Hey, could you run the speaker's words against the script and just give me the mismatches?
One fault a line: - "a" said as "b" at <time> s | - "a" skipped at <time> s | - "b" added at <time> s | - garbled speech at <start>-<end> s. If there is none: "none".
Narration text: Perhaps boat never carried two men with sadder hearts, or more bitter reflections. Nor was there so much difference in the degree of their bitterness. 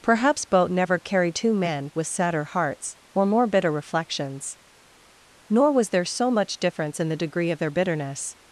none